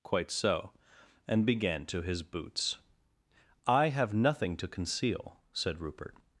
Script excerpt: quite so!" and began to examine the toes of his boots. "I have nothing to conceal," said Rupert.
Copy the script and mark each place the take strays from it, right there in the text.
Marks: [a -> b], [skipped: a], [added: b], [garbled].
quite so!" and began to [skipped: examine the toes of] his boots. "I have nothing to conceal," said Rupert.